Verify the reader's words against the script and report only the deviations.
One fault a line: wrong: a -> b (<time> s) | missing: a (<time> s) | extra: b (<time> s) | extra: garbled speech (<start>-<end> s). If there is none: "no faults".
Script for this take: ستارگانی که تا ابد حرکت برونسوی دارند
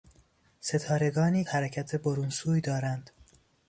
missing: که تا ابد (1.4 s)